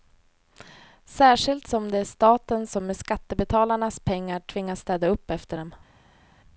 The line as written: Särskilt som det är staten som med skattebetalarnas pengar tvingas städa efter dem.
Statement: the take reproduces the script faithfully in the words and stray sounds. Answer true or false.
false